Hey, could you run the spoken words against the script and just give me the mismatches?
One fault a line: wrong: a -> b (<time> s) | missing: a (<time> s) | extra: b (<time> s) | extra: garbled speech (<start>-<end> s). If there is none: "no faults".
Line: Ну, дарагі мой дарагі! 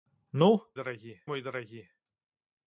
no faults